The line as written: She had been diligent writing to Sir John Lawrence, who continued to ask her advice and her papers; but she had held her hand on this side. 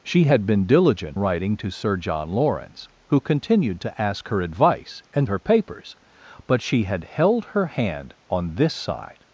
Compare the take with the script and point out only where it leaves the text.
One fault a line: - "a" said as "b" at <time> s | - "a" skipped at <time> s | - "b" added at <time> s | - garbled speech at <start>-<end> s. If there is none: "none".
none